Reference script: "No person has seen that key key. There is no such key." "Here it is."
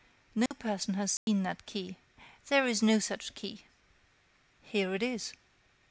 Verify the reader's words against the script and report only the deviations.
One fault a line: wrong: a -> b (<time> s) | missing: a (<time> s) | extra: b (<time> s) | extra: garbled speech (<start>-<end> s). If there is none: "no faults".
missing: key (1.9 s)